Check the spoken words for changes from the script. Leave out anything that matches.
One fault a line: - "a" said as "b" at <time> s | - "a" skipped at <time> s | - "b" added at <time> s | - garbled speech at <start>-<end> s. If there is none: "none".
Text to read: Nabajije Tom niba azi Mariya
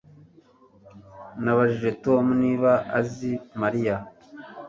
none